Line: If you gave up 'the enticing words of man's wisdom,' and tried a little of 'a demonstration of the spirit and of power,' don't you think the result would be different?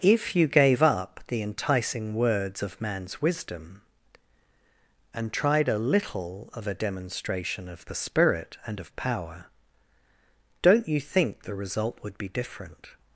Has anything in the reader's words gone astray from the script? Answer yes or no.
no